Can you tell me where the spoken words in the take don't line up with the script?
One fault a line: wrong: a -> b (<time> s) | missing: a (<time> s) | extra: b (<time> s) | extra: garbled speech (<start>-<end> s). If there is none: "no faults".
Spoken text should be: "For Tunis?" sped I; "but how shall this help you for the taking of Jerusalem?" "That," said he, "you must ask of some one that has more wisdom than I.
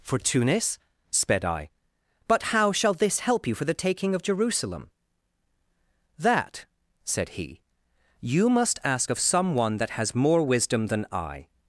no faults